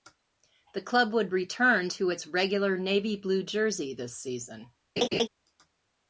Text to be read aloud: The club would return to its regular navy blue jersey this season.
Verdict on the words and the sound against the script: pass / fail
fail